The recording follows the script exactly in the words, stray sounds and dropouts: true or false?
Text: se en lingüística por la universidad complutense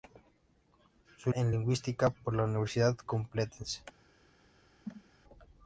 false